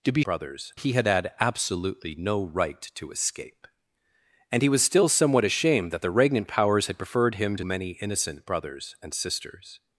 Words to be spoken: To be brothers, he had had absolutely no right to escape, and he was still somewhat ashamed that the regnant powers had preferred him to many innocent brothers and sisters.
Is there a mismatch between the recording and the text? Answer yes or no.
no